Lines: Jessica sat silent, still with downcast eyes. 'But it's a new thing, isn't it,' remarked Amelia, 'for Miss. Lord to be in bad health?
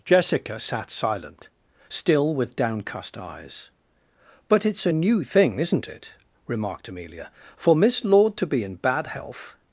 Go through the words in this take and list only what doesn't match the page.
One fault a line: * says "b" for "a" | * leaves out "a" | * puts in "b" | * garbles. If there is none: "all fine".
all fine